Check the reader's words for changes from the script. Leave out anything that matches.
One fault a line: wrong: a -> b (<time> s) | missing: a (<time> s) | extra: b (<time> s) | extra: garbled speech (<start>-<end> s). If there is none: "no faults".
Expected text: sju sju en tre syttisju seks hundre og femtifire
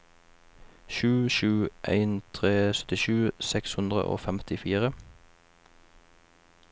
no faults